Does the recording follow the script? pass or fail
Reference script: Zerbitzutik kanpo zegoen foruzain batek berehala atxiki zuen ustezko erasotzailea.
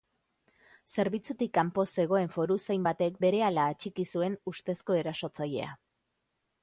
pass